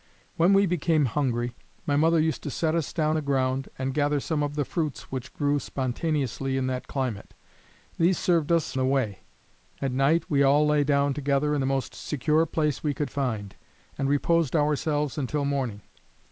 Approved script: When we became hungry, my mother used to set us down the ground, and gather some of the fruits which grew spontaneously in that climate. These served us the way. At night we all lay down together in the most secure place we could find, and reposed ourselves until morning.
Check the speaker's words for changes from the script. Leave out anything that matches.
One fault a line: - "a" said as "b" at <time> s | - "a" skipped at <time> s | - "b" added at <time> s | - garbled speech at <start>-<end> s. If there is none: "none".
none